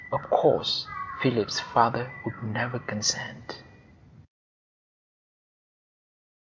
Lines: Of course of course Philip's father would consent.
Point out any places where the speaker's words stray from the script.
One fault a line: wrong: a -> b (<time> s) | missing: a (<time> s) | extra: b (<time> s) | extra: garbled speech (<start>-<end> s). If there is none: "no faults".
missing: of course (0.9 s)
extra: never (2.5 s)